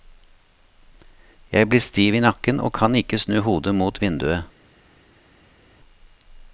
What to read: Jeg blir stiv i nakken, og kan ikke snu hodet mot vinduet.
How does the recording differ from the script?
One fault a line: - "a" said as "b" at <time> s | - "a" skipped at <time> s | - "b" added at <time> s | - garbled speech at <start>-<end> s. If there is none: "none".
none